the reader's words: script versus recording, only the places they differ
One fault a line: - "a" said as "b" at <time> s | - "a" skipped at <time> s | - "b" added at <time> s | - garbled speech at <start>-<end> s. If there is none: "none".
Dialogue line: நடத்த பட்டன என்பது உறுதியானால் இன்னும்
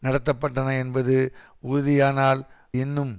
none